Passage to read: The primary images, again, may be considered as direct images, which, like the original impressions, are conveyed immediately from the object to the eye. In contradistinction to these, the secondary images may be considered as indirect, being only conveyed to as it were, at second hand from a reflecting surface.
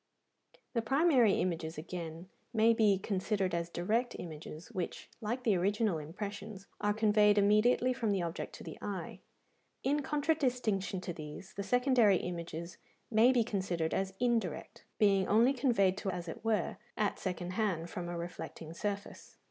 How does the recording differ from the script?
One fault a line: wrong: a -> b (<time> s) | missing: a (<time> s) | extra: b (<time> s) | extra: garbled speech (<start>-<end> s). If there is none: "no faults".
no faults